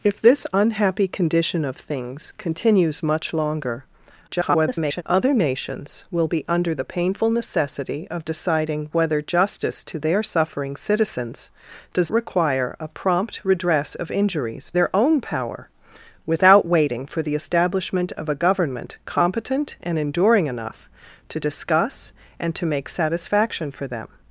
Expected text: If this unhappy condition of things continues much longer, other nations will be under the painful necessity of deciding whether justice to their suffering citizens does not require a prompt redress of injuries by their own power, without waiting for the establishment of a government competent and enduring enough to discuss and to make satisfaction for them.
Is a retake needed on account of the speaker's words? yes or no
yes